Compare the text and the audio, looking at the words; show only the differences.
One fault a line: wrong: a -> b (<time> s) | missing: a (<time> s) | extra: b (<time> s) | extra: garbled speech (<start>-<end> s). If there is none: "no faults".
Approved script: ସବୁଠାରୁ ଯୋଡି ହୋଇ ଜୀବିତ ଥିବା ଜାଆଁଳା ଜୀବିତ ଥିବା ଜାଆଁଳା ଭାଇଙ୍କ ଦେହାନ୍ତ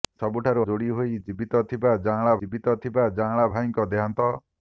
no faults